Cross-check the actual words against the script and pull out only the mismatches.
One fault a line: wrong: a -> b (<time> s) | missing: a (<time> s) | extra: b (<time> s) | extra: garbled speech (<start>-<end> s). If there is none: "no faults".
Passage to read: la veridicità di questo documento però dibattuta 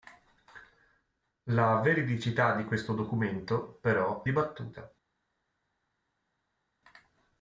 no faults